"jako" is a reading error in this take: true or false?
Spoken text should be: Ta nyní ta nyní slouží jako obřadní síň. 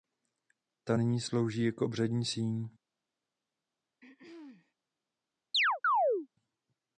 false